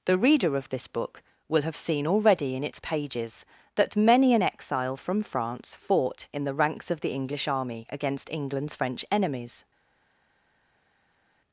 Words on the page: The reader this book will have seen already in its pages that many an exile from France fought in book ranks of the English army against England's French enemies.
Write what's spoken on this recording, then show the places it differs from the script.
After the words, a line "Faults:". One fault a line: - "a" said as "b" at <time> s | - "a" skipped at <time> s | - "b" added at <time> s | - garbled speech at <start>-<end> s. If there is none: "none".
The reader of this book will have seen already in its pages that many an exile from France fought in the ranks of the English army against England's French enemies.
Faults:
- "of" added at 0.6 s
- "book" said as "the" at 6.4 s